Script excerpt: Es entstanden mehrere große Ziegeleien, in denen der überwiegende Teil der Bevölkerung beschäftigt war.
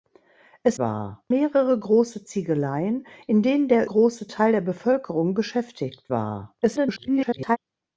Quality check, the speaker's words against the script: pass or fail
fail